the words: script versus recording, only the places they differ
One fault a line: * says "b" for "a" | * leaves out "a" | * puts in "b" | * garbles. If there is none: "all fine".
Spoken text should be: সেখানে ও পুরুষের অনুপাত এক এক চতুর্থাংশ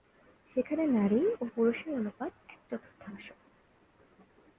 * puts in "নারী"
* leaves out "এক"